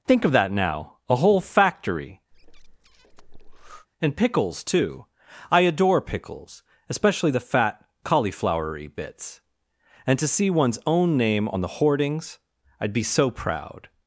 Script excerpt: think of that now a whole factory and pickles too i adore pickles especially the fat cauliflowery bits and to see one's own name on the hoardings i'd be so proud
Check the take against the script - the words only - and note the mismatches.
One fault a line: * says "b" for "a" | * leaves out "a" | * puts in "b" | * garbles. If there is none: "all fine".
all fine